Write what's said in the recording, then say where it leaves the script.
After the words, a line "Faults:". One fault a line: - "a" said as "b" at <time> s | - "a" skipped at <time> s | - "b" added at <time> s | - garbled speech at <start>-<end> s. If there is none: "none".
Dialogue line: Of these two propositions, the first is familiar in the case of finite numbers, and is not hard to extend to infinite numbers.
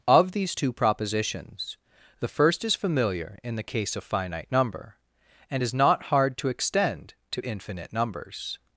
Of these two propositions, the first is familiar in the case of finite number, and is not hard to extend to infinite numbers.
Faults:
- "numbers" said as "number" at 4.5 s